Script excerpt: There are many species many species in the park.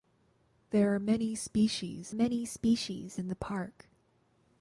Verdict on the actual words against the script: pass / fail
pass